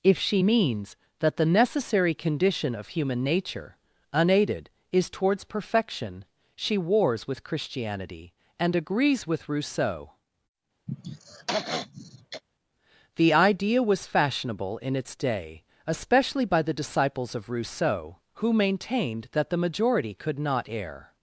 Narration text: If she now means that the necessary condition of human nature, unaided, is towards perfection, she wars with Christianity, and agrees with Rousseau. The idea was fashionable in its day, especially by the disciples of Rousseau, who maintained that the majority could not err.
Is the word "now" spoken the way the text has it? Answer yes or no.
no